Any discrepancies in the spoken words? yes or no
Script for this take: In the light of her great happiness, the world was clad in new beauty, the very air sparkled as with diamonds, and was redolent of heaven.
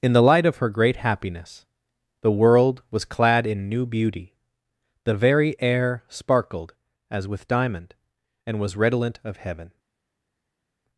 yes